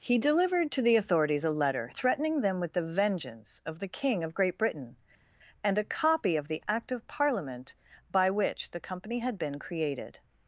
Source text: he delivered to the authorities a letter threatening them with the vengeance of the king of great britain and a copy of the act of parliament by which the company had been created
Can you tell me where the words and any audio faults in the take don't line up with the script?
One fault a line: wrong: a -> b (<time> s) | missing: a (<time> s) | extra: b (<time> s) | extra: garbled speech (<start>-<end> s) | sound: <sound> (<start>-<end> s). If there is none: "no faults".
no faults